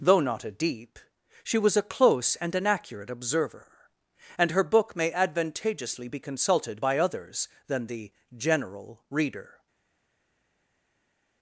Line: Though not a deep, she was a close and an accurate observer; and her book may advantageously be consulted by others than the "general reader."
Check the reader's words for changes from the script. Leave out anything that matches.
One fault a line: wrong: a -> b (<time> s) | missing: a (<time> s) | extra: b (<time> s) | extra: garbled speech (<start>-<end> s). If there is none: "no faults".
no faults